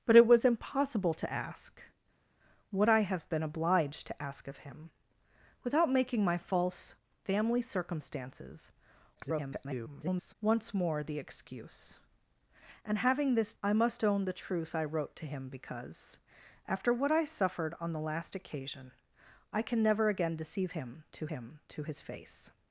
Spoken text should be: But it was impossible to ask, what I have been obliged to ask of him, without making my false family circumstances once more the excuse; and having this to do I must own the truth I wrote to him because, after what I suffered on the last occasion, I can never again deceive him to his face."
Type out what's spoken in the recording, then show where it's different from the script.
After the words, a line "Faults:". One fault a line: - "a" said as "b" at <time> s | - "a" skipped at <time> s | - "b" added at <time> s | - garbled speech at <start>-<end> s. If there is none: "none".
But it was impossible to ask, what I have been obliged to ask of him, without making my false family circumstances [garbled] once more the excuse; and having this I must own the truth I wrote to him because, after what I suffered on the last occasion, I can never again deceive him to him to his face."
Faults:
- garbled speech at 9.2-10.3 s
- "to do" skipped at 13.5 s
- "him to" added at 21.3 s